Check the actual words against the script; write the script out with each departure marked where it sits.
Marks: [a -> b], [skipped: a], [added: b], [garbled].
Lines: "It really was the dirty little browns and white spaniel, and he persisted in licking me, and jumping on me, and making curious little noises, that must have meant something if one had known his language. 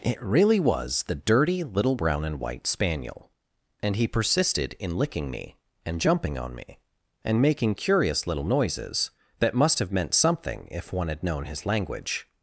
"It really was the dirty little [browns -> brown] and white spaniel, and he persisted in licking me, and jumping on me, and making curious little noises, that must have meant something if one had known his language.